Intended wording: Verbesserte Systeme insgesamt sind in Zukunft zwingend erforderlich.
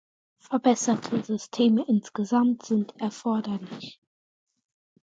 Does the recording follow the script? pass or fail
fail